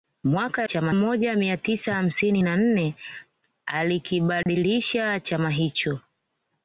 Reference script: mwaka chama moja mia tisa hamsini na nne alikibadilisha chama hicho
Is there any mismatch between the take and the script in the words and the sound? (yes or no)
yes